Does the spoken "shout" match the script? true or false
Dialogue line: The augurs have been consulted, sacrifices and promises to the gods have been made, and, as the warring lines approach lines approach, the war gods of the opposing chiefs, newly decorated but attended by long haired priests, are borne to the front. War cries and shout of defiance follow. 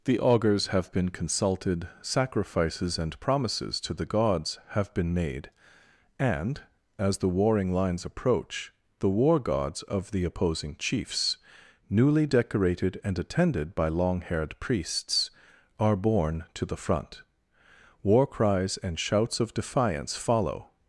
false